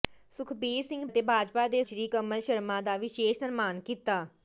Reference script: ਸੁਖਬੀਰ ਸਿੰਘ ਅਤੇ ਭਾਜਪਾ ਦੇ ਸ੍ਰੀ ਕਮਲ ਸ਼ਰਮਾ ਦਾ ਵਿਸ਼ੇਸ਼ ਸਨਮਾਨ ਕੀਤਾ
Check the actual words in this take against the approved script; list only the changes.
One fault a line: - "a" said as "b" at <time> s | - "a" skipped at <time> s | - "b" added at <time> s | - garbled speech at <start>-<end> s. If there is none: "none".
none